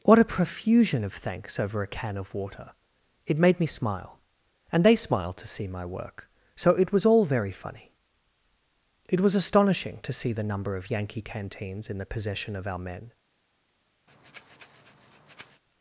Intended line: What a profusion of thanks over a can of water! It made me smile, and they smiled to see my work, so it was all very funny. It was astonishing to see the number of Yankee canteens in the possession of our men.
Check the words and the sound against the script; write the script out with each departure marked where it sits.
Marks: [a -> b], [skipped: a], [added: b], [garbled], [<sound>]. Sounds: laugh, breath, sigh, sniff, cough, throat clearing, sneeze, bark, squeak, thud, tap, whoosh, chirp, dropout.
What a profusion of thanks over a can of water! It made me smile, and they smiled to see my work, so it was all very funny. It was astonishing to see the number of Yankee canteens in the possession of our men. [breath]